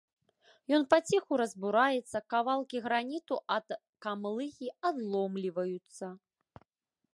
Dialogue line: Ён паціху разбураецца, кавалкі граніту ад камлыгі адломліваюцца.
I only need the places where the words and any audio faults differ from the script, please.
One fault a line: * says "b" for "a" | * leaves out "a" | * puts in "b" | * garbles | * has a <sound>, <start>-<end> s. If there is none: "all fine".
all fine